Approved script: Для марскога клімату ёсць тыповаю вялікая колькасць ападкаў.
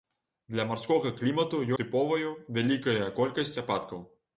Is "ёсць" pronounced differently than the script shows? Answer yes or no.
yes